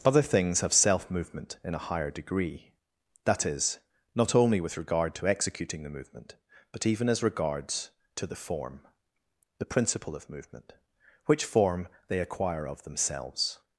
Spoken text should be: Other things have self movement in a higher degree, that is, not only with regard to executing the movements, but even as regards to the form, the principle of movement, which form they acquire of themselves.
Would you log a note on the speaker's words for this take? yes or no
yes